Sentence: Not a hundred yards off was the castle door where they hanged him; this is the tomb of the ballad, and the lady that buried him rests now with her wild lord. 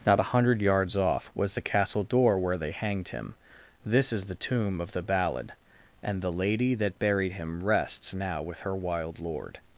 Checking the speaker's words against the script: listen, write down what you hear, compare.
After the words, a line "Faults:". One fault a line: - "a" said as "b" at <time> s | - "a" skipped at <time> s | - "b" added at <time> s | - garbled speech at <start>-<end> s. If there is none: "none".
Not a hundred yards off was the castle door where they hanged him; this is the tomb of the ballad, and the lady that buried him rests now with her wild lord.
Faults:
none